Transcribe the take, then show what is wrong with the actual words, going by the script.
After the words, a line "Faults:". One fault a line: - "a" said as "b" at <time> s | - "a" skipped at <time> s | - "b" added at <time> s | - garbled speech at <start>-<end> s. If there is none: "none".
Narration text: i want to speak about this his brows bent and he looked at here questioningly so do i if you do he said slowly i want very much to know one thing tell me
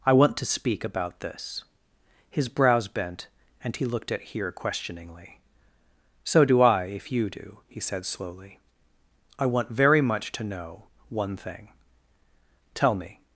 i want to speak about this his brows bent and he looked at here questioningly so do i if you do he said slowly i want very much to know one thing tell me
Faults:
none